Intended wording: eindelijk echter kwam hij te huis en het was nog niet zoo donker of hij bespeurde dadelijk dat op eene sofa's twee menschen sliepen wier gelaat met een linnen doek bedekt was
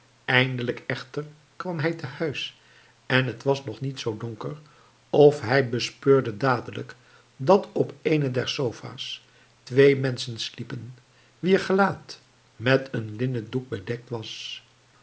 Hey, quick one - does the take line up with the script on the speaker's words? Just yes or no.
no